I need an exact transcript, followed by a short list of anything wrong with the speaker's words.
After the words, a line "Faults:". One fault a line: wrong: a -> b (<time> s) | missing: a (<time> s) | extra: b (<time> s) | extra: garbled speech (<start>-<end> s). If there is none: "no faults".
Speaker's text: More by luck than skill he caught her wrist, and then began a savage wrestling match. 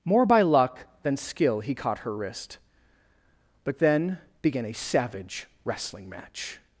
More by luck than skill he caught her wrist, but then began a savage wrestling match.
Faults:
wrong: and -> but (3.6 s)